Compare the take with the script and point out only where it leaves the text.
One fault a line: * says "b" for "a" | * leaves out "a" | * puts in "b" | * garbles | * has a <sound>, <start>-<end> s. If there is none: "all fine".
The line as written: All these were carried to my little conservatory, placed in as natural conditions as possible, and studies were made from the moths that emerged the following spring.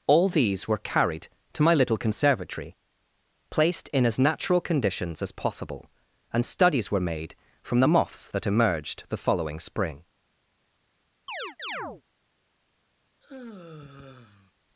* has a chirp, 11.3-12.0 s
* has a sigh, 13.2-14.5 s